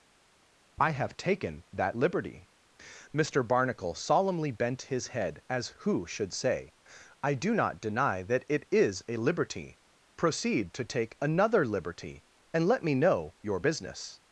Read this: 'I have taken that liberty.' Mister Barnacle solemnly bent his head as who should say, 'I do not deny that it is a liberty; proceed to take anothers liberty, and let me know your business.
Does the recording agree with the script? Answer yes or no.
no